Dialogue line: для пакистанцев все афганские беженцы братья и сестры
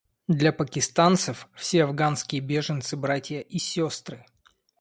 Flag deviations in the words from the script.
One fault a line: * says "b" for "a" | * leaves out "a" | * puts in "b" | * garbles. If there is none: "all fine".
all fine